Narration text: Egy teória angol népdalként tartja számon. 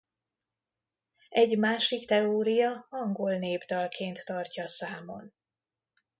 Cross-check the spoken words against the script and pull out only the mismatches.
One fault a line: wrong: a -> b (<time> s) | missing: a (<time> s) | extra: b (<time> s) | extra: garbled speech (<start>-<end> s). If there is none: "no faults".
extra: másik (1.6 s)